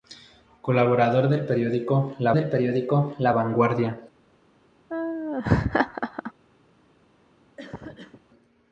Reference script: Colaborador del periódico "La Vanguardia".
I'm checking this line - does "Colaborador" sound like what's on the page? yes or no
yes